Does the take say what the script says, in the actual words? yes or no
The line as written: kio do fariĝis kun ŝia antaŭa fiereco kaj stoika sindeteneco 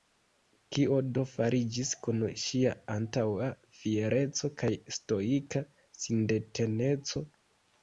yes